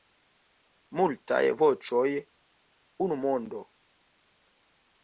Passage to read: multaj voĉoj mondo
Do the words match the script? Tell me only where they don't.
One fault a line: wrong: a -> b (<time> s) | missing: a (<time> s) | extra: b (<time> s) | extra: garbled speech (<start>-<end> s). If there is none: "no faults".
extra: unu (3.1 s)